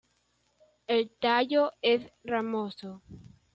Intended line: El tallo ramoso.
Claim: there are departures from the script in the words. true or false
true